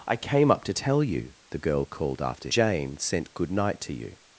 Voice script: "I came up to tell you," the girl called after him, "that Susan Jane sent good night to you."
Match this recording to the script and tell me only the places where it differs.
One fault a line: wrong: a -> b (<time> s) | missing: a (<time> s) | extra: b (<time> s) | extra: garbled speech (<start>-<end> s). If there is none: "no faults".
missing: him that Susan (2.5 s)